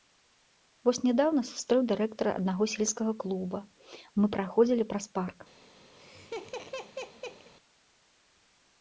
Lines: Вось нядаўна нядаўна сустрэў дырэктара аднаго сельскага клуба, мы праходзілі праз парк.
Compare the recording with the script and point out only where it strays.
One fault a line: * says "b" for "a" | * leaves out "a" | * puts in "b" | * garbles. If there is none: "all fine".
* leaves out "нядаўна"